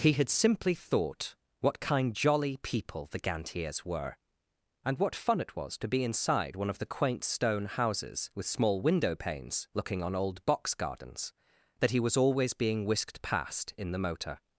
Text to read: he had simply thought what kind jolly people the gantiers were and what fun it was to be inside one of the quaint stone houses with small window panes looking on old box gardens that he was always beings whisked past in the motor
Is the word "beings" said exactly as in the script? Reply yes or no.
no